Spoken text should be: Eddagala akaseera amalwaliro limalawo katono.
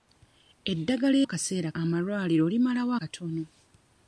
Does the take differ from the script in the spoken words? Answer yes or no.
no